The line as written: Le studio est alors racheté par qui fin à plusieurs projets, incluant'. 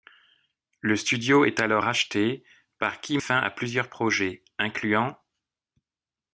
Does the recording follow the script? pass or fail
pass